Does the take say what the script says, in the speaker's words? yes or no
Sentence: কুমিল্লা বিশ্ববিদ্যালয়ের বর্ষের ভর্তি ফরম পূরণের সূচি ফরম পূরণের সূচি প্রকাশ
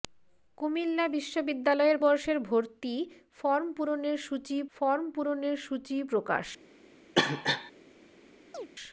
yes